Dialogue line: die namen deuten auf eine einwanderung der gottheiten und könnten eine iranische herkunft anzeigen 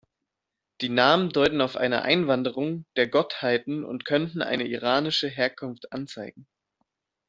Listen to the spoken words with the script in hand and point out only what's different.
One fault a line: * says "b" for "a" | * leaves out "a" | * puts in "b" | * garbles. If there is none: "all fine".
all fine